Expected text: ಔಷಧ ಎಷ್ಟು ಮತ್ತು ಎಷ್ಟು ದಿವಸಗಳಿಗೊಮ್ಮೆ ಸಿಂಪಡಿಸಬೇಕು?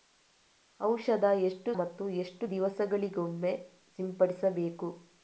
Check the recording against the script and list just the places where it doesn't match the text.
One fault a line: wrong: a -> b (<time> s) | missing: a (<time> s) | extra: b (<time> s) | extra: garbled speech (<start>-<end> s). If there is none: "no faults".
no faults